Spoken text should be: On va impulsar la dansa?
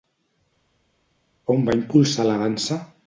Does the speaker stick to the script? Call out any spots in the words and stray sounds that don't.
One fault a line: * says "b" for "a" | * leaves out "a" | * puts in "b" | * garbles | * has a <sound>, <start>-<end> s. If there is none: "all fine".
all fine